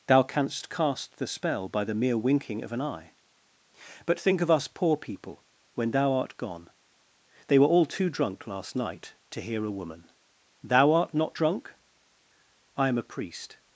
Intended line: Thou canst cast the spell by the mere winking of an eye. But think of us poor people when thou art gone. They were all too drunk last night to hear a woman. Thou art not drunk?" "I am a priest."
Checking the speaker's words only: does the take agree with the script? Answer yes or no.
yes